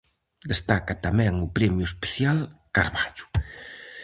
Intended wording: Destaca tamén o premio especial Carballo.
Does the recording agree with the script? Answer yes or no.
yes